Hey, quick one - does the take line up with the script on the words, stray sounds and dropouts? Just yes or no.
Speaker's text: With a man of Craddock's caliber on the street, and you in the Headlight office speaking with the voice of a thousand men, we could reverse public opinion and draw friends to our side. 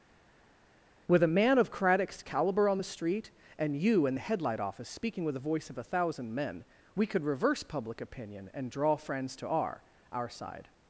no